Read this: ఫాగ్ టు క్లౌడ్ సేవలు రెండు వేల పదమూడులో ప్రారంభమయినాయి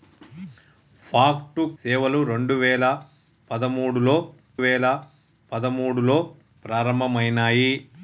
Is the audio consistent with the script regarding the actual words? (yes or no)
no